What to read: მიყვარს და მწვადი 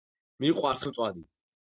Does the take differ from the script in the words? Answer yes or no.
no